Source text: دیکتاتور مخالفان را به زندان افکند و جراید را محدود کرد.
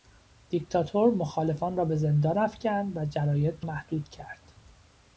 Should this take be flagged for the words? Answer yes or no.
yes